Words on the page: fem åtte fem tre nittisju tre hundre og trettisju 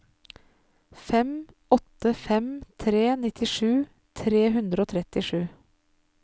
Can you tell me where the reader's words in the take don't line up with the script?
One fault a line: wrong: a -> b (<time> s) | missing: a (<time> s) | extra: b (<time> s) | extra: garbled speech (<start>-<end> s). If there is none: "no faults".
no faults